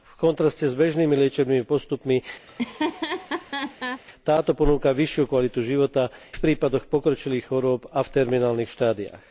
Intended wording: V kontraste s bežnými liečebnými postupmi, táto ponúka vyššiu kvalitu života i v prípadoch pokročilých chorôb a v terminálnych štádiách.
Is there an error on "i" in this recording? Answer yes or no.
yes